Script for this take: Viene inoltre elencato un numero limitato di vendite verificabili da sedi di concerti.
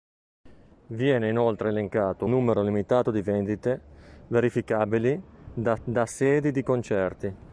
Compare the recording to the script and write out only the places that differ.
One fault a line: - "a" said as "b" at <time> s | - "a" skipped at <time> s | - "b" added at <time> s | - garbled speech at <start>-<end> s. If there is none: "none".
- "un" skipped at 2.2 s
- "da" added at 5.8 s